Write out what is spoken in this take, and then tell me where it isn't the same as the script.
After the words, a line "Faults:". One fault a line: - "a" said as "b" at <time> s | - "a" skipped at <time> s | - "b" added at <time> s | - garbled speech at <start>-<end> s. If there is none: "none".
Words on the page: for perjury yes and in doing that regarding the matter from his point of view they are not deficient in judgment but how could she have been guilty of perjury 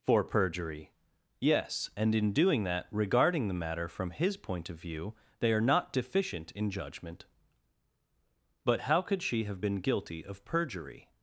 for perjury yes and in doing that regarding the matter from his point of view they are not deficient in judgment but how could she have been guilty of perjury
Faults:
none